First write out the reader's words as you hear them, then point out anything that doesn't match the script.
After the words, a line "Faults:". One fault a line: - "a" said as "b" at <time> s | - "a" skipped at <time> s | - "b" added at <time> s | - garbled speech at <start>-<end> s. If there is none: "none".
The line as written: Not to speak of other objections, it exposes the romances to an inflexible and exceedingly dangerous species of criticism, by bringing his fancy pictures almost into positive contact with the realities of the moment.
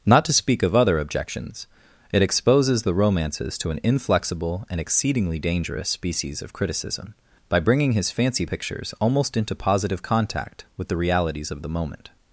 Not to speak of other objections, it exposes the romances to an inflexible and exceedingly dangerous species of criticism, by bringing his fancy pictures almost into positive contact with the realities of the moment.
Faults:
none